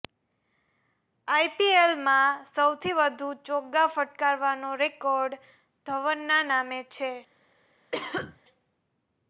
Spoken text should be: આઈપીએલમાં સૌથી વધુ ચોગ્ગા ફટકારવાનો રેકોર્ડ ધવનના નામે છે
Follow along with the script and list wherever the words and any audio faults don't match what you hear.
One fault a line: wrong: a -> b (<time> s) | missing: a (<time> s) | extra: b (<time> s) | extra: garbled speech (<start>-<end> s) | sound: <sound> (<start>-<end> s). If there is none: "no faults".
sound: cough (7.9-8.4 s)